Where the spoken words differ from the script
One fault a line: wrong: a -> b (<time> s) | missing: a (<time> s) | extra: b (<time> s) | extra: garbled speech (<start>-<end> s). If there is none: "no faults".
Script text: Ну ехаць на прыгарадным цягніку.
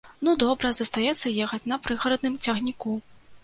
extra: добра застаецца (0.4 s)